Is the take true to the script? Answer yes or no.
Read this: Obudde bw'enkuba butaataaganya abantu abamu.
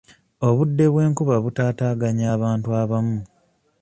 yes